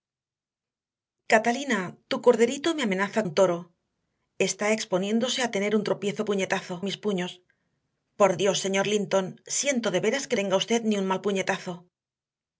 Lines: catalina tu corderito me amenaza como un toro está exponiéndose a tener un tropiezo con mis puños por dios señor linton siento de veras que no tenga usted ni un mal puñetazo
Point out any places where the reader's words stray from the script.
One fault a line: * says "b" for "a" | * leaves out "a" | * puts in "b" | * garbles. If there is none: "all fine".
* leaves out "como"
* says "puñetazo" for "con"
* leaves out "no"